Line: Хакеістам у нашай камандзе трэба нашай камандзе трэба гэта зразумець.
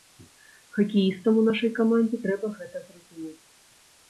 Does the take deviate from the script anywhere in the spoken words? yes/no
yes